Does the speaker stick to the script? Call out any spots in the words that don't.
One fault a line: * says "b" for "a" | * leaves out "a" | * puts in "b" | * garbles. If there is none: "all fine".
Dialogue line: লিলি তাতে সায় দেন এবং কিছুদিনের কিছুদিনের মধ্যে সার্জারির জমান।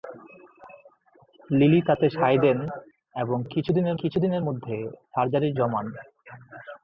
all fine